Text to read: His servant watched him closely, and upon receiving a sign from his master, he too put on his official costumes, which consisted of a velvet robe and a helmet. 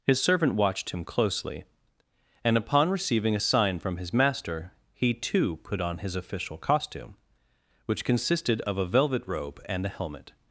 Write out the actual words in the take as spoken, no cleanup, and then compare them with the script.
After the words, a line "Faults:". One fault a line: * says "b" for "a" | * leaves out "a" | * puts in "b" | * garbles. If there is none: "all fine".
His servant watched him closely, and upon receiving a sign from his master, he too put on his official costume, which consisted of a velvet robe and a helmet.
Faults:
* says "costume" for "costumes"